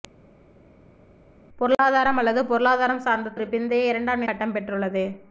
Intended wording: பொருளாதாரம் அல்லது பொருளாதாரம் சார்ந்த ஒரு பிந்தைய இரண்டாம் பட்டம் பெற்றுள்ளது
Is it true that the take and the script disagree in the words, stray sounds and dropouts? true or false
false